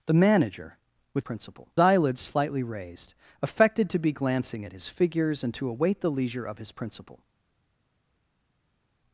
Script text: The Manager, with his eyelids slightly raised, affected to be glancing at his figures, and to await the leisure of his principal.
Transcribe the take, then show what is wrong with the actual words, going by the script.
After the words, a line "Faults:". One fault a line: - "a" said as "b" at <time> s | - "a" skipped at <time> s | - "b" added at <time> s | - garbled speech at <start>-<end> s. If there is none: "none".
The Manager, with principal eyelids slightly raised, affected to be glancing at his figures, and to await the leisure of his principal.
Faults:
- "his" said as "principal" at 1.2 s